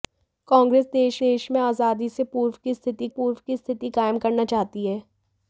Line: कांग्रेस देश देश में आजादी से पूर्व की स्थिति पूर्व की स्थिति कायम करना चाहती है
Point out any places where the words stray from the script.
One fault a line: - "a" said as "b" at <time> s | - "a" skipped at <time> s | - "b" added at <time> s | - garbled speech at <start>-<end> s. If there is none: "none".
none